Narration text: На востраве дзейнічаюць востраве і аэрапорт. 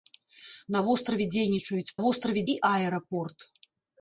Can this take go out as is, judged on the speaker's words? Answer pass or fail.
pass